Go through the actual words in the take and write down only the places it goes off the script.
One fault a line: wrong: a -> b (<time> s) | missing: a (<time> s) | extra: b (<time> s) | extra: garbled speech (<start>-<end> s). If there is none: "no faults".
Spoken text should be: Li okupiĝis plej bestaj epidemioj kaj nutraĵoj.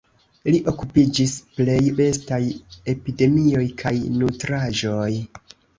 no faults